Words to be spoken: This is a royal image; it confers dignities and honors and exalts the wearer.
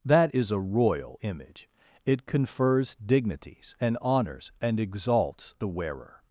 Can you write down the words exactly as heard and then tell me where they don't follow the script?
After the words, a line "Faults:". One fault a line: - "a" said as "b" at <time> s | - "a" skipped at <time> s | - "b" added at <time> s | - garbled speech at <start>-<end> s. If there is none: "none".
That is a royal image; it confers dignities and honors and exalts the wearer.
Faults:
- "This" said as "That" at 0.0 s